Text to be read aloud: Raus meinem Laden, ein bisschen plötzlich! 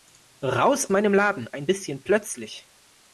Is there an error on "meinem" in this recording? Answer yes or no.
no